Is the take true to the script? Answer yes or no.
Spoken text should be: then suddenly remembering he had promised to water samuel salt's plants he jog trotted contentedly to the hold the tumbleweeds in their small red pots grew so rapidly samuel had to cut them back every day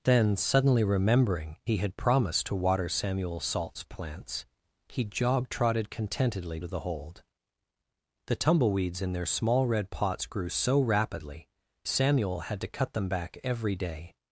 yes